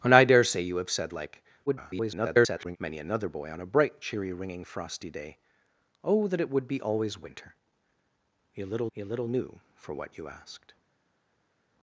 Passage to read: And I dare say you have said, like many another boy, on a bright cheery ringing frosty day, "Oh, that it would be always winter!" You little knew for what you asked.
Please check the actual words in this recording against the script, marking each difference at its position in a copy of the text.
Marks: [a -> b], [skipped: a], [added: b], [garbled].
And I dare say you have said, like [garbled] many another boy, on a bright cheery ringing frosty day, "Oh, that it would be always winter!" You little [added: you little] knew for what you asked.